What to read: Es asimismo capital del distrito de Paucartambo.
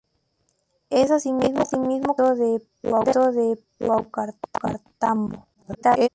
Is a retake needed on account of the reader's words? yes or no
yes